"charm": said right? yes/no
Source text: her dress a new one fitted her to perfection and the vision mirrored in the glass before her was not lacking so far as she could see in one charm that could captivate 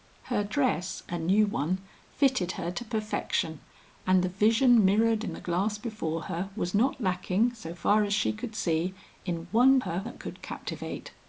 no